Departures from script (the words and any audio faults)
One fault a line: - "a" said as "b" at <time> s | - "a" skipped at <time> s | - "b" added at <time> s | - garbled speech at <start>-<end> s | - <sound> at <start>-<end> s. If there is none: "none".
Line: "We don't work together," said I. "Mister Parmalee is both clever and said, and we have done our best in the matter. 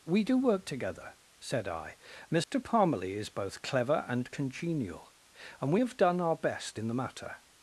- "don't" said as "do" at 0.2 s
- dropout at 2.4-2.5 s
- "said" said as "congenial" at 4.3 s